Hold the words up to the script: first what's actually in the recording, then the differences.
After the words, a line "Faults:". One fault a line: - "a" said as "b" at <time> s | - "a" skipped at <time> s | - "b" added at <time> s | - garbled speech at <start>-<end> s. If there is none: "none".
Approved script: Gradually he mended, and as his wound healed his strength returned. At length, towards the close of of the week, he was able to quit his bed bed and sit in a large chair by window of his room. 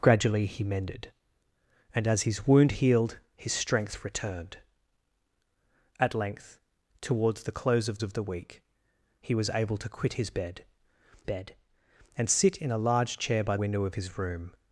Gradually he mended, and as his wound healed his strength returned. At length, towards the close of of the week, he was able to quit his bed bed and sit in a large chair by window of his room.
Faults:
none